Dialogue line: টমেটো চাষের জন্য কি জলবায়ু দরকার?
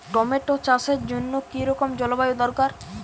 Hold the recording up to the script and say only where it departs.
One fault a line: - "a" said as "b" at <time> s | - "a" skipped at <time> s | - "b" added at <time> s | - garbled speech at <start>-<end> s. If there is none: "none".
- "রকম" added at 1.6 s